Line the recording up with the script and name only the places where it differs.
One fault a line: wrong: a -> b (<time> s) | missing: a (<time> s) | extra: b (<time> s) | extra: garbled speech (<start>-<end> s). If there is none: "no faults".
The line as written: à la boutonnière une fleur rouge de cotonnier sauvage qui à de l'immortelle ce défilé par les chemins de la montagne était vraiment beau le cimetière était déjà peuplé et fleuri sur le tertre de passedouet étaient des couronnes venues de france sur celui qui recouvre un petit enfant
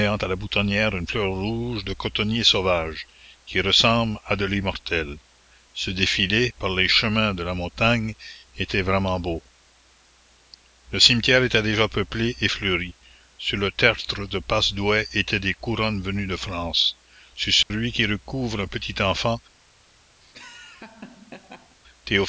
extra: ressemble (3.6 s)